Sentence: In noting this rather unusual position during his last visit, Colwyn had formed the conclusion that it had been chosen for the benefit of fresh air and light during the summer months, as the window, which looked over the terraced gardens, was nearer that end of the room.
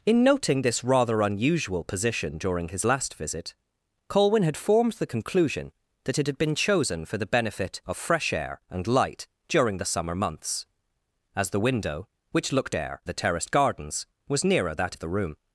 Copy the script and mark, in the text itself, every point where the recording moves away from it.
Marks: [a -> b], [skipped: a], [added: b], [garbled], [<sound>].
In noting this rather unusual position during his last visit, Colwyn had formed the conclusion that it had been chosen for the benefit of fresh air and light during the summer months, as the window, which looked [over -> air] the terraced gardens, was nearer that [skipped: end] of the room.